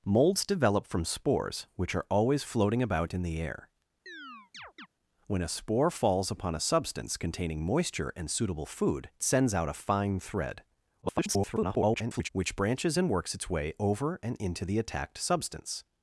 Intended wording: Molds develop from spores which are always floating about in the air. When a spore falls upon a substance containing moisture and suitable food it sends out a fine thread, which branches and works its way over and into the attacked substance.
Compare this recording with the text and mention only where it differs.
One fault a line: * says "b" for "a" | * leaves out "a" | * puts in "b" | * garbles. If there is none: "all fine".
* leaves out "it"
* garbles